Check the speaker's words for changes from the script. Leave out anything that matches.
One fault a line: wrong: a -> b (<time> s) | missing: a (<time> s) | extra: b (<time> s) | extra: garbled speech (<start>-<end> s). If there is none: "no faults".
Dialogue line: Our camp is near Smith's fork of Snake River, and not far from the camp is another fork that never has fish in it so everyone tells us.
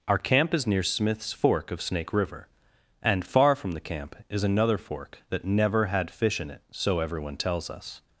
missing: not (3.2 s)
wrong: has -> had (5.8 s)